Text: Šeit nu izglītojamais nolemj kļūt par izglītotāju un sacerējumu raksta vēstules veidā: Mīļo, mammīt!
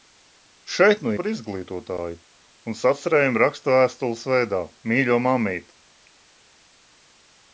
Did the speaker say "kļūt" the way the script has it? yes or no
no